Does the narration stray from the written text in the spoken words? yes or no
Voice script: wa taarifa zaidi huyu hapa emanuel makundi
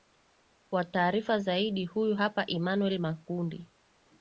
no